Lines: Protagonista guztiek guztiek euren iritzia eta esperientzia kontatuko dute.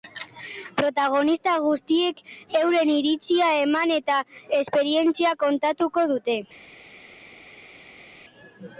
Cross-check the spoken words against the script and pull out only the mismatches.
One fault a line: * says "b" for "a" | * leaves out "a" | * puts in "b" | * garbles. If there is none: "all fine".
* leaves out "guztiek"
* puts in "eman"